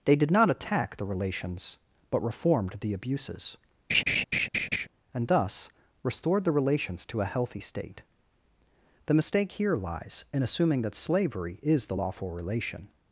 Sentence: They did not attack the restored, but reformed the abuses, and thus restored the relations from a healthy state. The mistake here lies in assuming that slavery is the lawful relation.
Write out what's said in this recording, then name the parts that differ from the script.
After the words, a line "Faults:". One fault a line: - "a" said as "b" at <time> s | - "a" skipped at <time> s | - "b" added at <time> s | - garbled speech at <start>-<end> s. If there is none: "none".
They did not attack the relations, but reformed the abuses, and thus restored the relations to a healthy state. The mistake here lies in assuming that slavery is the lawful relation.
Faults:
- "restored" said as "relations" at 1.1 s
- "from" said as "to" at 7.1 s